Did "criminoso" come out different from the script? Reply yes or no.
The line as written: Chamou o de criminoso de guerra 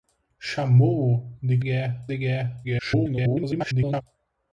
yes